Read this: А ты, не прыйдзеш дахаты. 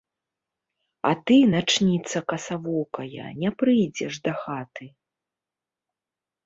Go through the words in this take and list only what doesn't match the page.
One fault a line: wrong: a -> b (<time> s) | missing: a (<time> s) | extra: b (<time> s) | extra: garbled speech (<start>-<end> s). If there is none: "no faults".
extra: начніца касавокая (1.5 s)